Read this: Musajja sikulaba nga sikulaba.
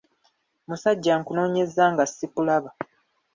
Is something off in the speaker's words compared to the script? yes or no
yes